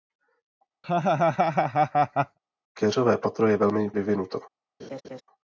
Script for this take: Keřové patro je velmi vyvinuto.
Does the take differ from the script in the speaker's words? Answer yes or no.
no